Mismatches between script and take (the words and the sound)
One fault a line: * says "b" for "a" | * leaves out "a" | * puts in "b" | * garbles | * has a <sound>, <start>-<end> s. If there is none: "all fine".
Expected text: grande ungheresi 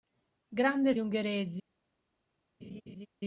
* has a laugh, 2.6-3.1 s